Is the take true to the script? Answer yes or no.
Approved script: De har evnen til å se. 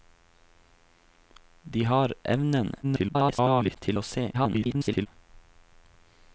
no